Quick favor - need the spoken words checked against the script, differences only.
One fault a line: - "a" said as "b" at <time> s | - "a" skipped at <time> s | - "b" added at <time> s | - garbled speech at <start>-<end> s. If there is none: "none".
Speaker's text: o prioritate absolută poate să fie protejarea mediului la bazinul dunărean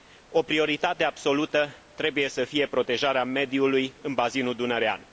- "poate" said as "trebuie" at 1.9 s
- "la" said as "în" at 4.0 s